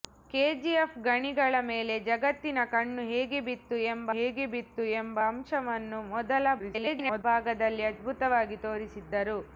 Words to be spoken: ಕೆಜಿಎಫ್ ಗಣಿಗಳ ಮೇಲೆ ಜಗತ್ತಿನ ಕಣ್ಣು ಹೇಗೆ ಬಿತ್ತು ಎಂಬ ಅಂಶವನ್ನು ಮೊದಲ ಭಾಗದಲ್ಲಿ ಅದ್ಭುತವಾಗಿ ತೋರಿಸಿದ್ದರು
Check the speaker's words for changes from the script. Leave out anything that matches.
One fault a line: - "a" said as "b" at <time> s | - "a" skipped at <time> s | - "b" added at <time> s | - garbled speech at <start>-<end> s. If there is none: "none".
- "ಹೇಗೆ ಬಿತ್ತು ಎಂಬ" added at 4.2 s
- garbled speech at 6.6-7.2 s